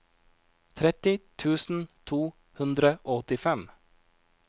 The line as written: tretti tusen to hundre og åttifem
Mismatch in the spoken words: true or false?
false